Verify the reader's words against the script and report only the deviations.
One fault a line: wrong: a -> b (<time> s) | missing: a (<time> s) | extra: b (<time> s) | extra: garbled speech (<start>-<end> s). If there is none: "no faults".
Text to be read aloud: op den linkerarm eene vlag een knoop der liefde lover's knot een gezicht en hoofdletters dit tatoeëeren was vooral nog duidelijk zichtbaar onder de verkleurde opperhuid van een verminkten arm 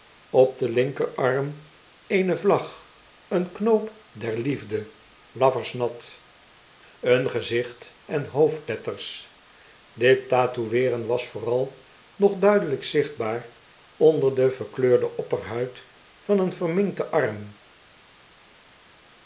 no faults